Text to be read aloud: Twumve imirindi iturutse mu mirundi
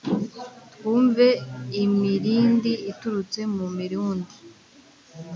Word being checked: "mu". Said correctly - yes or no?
yes